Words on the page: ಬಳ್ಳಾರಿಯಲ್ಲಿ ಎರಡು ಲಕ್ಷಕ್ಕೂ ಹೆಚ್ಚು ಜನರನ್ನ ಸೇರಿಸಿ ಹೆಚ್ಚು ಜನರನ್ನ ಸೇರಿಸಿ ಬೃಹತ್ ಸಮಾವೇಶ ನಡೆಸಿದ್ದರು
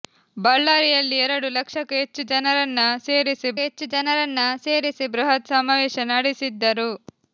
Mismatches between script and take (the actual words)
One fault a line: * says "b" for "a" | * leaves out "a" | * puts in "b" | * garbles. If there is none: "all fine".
all fine